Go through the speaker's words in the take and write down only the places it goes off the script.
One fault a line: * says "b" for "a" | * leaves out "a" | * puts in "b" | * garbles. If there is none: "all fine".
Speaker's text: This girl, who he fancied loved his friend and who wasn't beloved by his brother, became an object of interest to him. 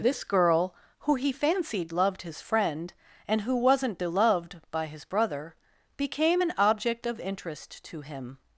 all fine